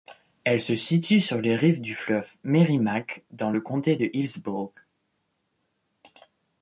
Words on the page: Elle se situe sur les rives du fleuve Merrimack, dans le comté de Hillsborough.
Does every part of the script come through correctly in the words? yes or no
yes